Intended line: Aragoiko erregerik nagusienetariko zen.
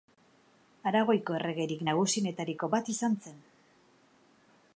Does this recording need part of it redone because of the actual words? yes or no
yes